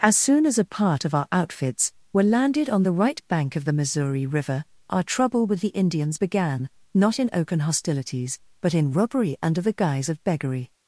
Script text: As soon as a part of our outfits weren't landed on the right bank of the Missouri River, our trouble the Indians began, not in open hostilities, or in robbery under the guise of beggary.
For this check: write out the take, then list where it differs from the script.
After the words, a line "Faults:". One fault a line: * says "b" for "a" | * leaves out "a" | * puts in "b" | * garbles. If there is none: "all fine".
As soon as a part of our outfits were landed on the right bank of the Missouri River, our trouble with the Indians began, not in open hostilities, but in robbery under the guise of beggary.
Faults:
* says "were" for "weren't"
* puts in "with"
* says "but" for "or"